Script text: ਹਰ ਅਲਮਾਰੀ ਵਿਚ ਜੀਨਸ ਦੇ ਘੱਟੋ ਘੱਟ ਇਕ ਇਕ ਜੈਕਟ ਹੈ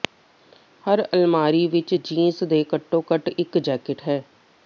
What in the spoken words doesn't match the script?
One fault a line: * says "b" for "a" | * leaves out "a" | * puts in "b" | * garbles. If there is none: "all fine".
* leaves out "ਇਕ"